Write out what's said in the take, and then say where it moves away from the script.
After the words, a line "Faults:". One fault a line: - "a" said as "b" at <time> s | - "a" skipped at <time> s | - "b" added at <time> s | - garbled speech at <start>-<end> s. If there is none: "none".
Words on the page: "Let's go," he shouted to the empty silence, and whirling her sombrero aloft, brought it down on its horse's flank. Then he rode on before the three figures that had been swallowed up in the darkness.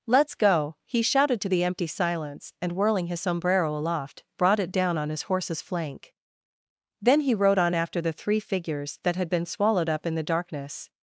"Let's go," he shouted to the empty silence, and whirling his sombrero aloft, brought it down on his horse's flank. Then he rode on after the three figures that had been swallowed up in the darkness.
Faults:
- "her" said as "his" at 3.0 s
- "its" said as "his" at 5.1 s
- "before" said as "after" at 7.7 s